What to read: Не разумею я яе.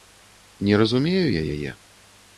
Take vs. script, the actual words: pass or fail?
pass